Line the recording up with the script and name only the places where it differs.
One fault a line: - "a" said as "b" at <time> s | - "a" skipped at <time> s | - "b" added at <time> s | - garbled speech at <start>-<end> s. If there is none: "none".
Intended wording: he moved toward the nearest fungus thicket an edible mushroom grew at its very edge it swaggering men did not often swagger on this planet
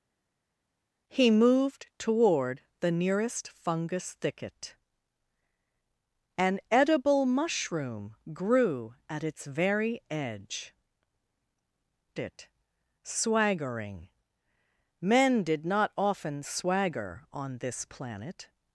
none